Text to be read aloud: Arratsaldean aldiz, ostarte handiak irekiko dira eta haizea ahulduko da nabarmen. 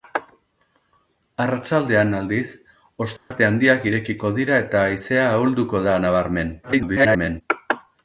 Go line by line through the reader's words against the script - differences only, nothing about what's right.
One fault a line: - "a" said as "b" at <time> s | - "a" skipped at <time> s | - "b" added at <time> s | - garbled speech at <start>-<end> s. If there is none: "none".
- garbled speech at 6.6-7.4 s